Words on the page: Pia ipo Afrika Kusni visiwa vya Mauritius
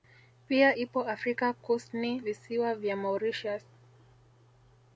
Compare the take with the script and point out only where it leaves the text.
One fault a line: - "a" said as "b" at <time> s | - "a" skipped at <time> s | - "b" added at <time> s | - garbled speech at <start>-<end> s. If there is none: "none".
none